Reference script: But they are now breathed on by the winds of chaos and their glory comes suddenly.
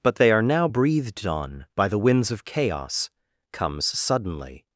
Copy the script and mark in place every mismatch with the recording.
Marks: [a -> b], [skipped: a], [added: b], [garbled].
But they are now breathed on by the winds of chaos [skipped: and their glory] comes suddenly.